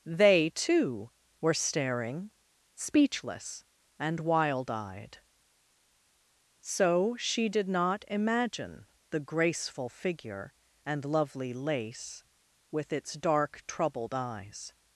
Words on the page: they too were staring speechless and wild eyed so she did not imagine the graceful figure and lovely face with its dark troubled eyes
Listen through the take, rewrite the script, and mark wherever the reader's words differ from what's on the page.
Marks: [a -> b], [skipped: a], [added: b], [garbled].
they too were staring speechless and wild eyed so she did not imagine the graceful figure and lovely [face -> lace] with its dark troubled eyes